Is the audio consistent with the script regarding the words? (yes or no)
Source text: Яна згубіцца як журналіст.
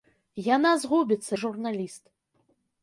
no